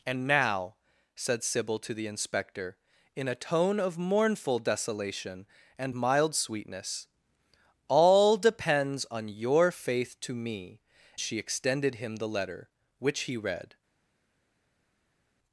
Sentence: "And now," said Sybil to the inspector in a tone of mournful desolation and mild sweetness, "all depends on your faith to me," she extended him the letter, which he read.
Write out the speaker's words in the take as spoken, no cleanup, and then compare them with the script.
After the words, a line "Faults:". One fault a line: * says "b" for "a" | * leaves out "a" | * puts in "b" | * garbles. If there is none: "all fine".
"And now," said Sybil to the inspector in a tone of mournful desolation and mild sweetness, "all depends on your faith to me," she extended him the letter, which he read.
Faults:
all fine